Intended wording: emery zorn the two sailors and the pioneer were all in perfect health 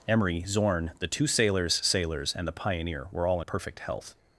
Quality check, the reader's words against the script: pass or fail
fail